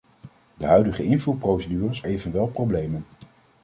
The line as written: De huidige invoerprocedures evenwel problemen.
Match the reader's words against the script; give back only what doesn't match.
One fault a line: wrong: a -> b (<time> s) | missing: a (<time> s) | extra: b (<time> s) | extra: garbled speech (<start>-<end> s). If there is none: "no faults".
no faults